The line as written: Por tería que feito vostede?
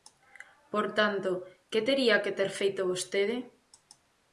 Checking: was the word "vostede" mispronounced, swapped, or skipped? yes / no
no